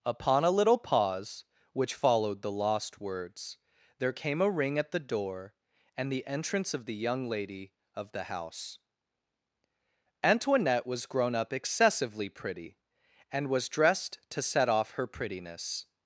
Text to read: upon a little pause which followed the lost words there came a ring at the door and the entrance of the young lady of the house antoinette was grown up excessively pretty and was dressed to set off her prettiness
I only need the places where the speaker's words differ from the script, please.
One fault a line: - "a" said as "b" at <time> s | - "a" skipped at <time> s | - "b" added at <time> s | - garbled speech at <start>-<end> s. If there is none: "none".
none